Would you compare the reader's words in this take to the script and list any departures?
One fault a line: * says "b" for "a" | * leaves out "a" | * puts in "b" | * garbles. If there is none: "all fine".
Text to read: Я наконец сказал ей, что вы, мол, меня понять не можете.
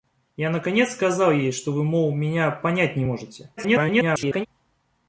* garbles